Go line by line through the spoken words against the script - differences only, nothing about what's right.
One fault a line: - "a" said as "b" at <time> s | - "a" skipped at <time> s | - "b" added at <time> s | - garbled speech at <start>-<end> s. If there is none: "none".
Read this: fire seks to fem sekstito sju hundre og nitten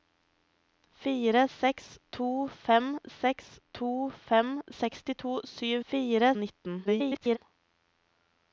- "seks to fem" added at 3.2 s
- "hundre" said as "fire" at 5.9 s
- garbled speech at 6.8-7.4 s